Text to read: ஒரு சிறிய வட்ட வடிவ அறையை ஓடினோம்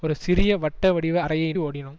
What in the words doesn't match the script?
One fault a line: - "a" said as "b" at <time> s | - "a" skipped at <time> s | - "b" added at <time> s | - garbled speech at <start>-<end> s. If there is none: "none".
none